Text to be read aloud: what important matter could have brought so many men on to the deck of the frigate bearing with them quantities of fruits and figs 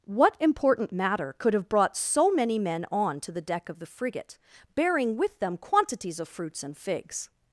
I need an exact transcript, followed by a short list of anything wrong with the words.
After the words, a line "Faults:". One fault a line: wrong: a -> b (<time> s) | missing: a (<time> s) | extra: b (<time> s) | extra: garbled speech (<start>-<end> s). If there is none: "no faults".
what important matter could have brought so many men on to the deck of the frigate bearing with them quantities of fruits and figs
Faults:
no faults